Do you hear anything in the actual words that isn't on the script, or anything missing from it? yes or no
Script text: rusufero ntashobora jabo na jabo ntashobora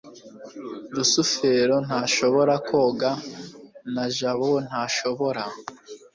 yes